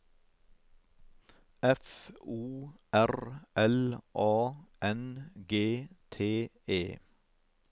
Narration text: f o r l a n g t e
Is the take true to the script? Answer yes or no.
yes